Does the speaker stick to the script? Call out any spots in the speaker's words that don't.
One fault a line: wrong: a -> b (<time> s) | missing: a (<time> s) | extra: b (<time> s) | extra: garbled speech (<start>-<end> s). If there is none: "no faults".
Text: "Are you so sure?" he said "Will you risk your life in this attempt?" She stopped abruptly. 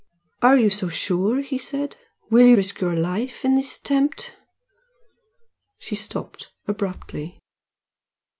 no faults